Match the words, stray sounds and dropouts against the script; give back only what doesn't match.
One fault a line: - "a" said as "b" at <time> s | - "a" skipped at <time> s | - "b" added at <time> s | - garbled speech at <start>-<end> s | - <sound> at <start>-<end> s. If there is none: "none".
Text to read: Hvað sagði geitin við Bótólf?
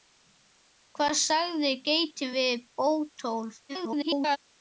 - garbled speech at 3.7-4.4 s